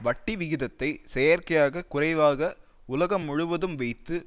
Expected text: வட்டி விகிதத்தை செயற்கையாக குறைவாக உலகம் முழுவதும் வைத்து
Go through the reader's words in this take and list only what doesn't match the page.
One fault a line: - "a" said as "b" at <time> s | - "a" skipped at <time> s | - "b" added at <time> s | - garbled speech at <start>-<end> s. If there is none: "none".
none